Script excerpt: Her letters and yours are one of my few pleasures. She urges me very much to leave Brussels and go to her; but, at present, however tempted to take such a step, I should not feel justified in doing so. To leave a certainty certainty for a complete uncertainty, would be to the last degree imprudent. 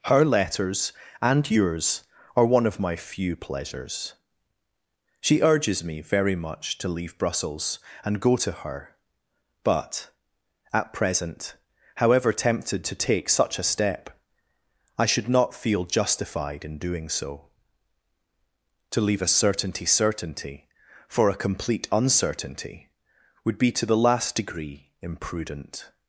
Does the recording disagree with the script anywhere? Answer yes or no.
no